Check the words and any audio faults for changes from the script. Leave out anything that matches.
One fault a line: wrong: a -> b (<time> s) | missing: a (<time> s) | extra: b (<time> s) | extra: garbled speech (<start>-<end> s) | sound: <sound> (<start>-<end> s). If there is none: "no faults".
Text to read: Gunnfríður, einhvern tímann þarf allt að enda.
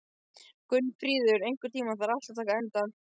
extra: taka (2.4 s)